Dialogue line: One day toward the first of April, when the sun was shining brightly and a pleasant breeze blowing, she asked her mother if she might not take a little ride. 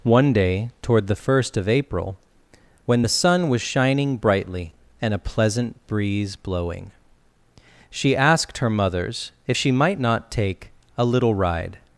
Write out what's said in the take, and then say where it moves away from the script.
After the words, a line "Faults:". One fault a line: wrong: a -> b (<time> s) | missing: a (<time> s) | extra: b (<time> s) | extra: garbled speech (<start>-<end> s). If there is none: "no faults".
One day toward the first of April, when the sun was shining brightly and a pleasant breeze blowing, she asked her mothers if she might not take a little ride.
Faults:
wrong: mother -> mothers (8.7 s)